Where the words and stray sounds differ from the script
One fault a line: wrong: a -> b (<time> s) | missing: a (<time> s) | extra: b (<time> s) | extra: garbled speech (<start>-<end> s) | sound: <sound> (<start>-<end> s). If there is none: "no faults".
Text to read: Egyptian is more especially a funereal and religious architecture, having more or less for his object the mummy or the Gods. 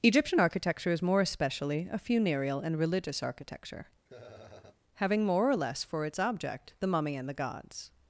extra: architecture (0.4 s)
sound: laugh (4.1-4.8 s)
wrong: his -> its (6.1 s)
wrong: or -> and (7.2 s)